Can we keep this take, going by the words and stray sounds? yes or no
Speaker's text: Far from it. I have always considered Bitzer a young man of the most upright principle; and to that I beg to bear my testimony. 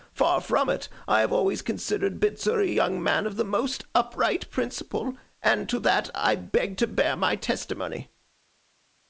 yes